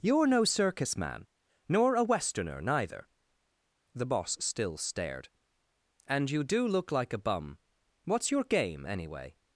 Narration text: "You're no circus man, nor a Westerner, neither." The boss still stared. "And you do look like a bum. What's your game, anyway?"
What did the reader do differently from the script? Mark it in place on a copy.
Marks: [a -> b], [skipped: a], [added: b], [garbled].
"You're no circus man, nor a Westerner, neither." The boss still stared. "And you do look like a bum. What's your game, anyway?"